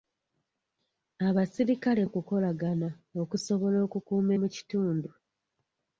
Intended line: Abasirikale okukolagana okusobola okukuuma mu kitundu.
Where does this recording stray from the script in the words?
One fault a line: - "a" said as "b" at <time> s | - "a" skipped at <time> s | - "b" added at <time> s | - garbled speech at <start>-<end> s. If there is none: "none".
none